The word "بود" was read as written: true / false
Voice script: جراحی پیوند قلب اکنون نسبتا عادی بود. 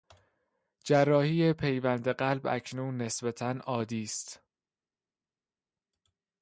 false